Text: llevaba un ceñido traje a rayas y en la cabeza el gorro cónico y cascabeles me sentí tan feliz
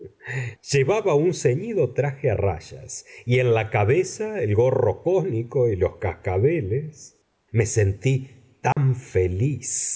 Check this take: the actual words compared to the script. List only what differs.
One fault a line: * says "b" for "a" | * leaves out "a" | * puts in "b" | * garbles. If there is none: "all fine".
* puts in "los"